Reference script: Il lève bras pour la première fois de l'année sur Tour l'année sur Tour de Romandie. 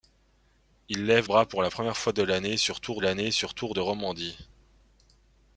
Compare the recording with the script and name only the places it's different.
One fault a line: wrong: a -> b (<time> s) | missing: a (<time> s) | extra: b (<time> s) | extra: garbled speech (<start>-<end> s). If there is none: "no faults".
no faults